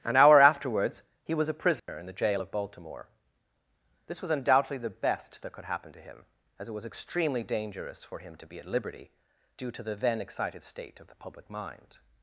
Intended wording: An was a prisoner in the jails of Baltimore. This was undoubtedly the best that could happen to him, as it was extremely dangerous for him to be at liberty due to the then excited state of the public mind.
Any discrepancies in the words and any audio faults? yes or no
yes